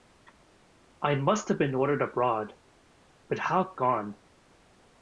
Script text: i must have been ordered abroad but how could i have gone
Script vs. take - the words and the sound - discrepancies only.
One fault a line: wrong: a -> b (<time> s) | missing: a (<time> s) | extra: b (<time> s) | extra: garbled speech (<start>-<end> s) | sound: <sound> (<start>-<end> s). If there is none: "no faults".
missing: could i have (3.8 s)